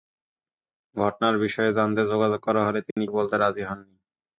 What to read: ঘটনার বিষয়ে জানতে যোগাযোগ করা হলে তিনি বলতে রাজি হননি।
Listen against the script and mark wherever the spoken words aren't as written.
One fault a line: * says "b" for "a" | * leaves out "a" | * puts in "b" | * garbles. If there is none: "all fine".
all fine